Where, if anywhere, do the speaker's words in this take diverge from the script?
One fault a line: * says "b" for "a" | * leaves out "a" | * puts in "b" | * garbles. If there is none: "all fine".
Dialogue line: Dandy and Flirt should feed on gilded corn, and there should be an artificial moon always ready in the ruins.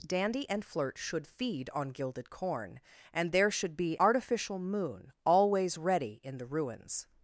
* leaves out "an"